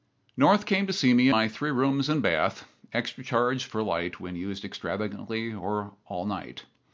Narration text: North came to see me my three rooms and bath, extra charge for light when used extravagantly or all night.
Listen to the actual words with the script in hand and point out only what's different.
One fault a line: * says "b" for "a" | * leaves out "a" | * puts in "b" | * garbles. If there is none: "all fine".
all fine